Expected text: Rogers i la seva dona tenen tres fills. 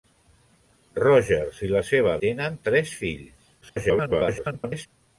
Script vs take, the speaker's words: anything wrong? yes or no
yes